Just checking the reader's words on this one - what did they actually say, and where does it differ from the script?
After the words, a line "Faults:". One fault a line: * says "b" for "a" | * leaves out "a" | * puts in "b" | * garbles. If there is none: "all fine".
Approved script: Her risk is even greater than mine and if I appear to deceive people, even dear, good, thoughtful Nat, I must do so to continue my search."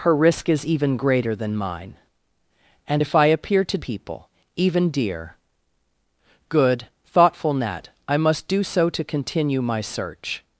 Her risk is even greater than mine and if I appear to people, even dear, good, thoughtful Nat, I must do so to continue my search."
Faults:
* leaves out "deceive"